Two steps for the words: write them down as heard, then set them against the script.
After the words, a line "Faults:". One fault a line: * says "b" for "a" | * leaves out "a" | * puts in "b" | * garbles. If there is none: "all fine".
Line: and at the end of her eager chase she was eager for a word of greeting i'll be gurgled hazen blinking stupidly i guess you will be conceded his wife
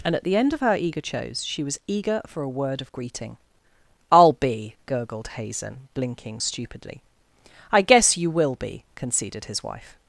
and at the end of her eager chose she was eager for a word of greeting i'll be gurgled hazen blinking stupidly i guess you will be conceded his wife
Faults:
* says "chose" for "chase"